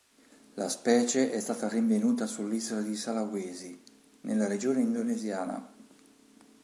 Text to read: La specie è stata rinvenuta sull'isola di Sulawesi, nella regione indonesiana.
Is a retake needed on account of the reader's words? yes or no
no